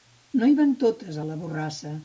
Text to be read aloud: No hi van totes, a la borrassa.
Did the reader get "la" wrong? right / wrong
right